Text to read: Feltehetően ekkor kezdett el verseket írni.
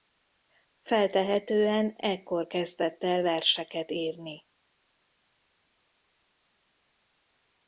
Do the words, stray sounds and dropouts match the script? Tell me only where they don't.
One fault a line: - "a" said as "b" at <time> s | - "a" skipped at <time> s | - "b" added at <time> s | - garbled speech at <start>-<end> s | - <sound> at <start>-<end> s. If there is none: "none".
none